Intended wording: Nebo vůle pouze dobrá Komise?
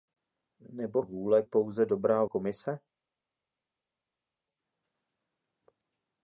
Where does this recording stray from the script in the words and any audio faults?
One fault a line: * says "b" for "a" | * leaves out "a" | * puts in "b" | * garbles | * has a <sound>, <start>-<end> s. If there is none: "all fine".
all fine